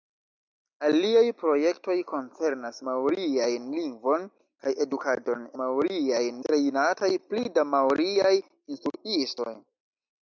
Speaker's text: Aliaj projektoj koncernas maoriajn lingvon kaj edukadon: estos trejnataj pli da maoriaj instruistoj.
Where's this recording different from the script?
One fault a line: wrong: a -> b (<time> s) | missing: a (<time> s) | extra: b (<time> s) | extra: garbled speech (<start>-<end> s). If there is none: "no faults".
wrong: estos -> maoriajn (5.6 s)